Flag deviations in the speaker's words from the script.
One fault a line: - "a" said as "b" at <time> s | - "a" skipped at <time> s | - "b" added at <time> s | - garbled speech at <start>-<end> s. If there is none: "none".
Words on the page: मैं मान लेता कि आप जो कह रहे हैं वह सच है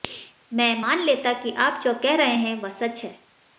none